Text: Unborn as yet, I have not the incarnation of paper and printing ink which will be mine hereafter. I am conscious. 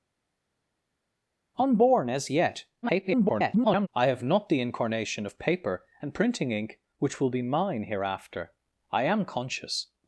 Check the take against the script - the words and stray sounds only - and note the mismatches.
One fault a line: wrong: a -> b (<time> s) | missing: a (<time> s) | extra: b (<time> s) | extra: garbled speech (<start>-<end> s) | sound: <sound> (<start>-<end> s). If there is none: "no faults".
extra: garbled speech (2.8-3.9 s)